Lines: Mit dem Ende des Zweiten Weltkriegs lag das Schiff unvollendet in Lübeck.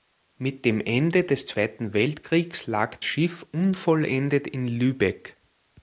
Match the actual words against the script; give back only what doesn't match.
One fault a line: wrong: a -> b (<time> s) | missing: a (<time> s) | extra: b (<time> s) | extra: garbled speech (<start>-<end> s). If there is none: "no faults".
missing: das (3.0 s)